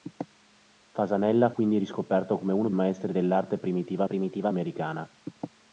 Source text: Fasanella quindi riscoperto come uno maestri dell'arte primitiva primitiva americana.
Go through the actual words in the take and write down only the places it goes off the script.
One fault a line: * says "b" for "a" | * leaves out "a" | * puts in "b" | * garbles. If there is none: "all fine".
all fine